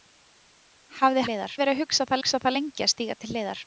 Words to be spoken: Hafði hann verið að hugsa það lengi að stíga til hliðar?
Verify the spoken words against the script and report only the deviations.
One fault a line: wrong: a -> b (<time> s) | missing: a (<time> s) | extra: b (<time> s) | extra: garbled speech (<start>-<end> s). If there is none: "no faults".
wrong: hann -> hliðar (1.3 s)
extra: hugsa það (2.2 s)